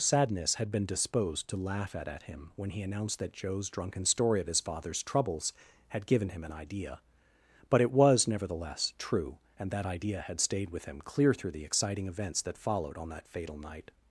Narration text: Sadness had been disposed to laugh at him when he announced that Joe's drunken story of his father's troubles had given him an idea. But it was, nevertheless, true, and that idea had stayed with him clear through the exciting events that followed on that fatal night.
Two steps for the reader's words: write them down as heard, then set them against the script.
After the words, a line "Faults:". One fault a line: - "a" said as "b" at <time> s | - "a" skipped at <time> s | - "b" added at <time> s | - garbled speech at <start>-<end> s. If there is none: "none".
Sadness had been disposed to laugh at at him when he announced that Joe's drunken story of his father's troubles had given him an idea. But it was, nevertheless, true, and that idea had stayed with him clear through the exciting events that followed on that fatal night.
Faults:
- "at" added at 2.1 s